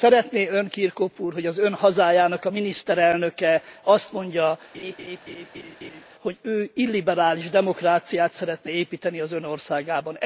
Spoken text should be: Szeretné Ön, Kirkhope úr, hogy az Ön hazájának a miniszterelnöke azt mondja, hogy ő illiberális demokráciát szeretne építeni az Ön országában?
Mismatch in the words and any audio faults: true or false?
true